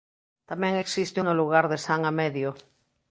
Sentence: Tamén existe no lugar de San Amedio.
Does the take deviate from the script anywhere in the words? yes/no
no